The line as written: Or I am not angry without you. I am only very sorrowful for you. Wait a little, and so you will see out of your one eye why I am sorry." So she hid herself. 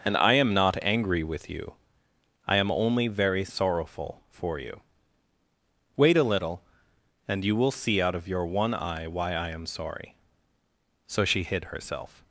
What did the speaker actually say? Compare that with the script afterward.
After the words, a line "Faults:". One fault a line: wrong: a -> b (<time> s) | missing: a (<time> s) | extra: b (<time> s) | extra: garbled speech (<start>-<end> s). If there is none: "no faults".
And I am not angry with you. I am only very sorrowful for you. Wait a little, and you will see out of your one eye why I am sorry." So she hid herself.
Faults:
wrong: Or -> And (0.0 s)
wrong: without -> with (1.2 s)
missing: so (7.5 s)